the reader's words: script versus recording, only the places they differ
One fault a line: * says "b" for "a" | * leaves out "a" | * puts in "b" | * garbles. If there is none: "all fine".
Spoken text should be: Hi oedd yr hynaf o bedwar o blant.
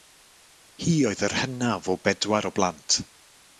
all fine